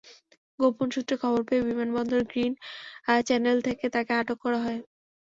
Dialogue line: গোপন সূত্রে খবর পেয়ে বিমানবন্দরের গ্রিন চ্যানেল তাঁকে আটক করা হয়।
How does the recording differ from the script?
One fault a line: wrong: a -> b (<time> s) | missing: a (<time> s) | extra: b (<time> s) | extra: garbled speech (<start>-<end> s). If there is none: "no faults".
extra: থেকে (3.7 s)